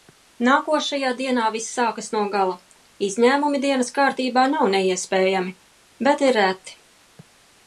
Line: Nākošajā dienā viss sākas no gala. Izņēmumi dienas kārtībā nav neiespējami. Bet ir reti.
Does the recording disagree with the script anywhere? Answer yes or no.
no